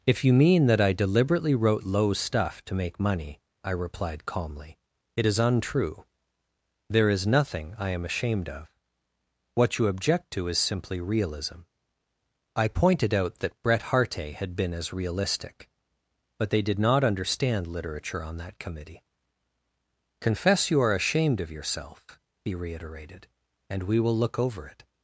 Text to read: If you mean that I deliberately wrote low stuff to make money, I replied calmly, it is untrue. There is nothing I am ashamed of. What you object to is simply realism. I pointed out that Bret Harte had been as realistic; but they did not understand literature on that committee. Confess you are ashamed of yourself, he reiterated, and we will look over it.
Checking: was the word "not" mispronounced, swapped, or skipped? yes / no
no